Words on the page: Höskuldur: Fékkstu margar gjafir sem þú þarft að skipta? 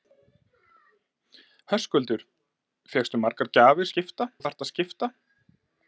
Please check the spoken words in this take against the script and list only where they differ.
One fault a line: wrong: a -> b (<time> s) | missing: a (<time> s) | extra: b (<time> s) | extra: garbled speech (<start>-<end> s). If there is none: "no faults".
wrong: sem -> skipta (3.9 s)